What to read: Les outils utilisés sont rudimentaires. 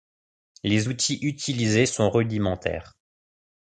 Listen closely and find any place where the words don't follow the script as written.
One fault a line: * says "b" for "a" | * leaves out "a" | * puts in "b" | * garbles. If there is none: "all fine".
all fine